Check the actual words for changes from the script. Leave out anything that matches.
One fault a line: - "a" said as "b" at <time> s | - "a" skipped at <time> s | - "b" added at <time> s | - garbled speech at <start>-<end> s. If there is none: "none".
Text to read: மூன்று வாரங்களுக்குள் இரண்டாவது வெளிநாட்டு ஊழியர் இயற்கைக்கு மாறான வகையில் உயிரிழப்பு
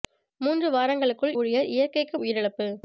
- "இரண்டாவது வெளிநாட்டு" skipped at 1.4 s
- "மாறான வகையில்" skipped at 2.2 s